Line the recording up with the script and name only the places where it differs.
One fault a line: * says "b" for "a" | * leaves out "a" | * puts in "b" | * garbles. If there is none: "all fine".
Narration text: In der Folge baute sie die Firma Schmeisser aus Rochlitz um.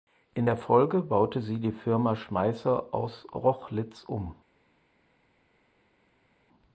all fine